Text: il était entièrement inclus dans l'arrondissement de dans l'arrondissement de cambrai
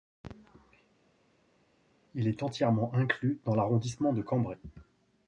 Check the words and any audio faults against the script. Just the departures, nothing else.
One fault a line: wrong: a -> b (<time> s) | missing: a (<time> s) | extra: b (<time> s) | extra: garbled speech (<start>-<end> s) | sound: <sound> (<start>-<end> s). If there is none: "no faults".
wrong: était -> est (2.3 s)
missing: dans l'arrondissement de (4.2 s)